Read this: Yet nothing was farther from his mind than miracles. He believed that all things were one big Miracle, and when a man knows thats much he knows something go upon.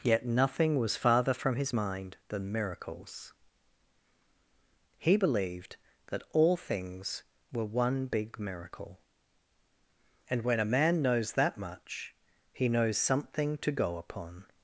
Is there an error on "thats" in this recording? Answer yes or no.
yes